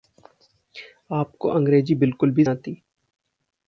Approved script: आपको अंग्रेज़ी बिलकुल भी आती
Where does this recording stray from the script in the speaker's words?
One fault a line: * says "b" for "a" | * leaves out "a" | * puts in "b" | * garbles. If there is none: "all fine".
all fine